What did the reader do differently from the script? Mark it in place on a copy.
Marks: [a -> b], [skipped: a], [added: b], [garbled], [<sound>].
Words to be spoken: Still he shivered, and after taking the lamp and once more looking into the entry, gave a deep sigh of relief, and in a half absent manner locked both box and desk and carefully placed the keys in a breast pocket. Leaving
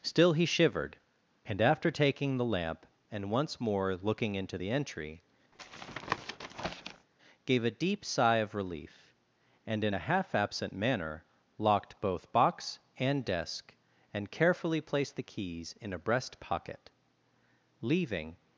Still he shivered, and after taking the lamp and once more looking into the entry, [tap] gave a deep sigh of relief, and in a half absent manner locked both box and desk and carefully placed the keys in a breast pocket. Leaving